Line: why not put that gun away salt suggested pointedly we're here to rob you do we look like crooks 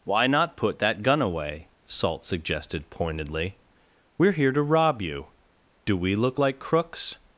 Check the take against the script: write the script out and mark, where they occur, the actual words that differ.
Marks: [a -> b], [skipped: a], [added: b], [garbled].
why not put that gun away salt suggested pointedly we're here to rob you do we look like crooks